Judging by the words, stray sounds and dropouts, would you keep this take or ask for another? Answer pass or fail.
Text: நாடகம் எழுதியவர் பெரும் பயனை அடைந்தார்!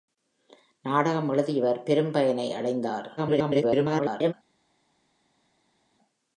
fail